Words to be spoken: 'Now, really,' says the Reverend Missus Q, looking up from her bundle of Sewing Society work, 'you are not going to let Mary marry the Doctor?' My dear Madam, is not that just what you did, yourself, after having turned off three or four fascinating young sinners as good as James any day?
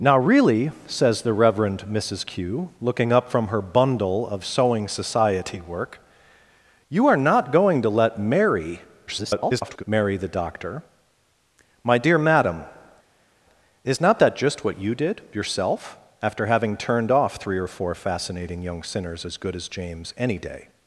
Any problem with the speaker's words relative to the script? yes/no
yes